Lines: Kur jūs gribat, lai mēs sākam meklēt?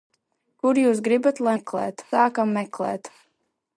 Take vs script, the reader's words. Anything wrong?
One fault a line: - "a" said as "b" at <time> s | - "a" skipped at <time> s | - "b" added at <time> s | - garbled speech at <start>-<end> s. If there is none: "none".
- "mēs" said as "meklēt" at 1.5 s